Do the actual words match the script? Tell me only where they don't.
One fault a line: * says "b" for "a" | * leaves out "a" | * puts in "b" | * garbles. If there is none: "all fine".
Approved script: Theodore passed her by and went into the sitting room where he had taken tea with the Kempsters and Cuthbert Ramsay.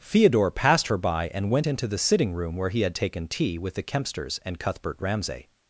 all fine